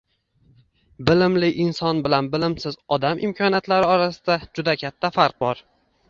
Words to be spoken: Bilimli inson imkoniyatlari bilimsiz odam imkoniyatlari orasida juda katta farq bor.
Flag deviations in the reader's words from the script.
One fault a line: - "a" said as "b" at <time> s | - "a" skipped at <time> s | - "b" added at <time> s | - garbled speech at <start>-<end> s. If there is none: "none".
- "imkoniyatlari" said as "bilan" at 2.1 s